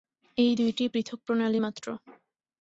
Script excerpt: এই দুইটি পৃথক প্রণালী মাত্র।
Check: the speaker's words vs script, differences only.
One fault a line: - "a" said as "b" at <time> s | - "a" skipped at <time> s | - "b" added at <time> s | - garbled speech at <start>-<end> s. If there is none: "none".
none